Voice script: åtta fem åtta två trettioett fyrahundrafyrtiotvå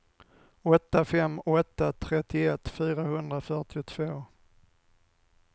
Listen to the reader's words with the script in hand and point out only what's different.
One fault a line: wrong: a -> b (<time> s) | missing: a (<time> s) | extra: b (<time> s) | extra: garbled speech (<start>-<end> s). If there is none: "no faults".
missing: två (1.9 s)